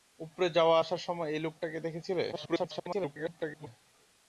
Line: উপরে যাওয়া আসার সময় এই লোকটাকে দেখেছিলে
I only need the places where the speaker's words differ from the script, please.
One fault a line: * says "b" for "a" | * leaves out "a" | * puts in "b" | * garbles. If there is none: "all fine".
* garbles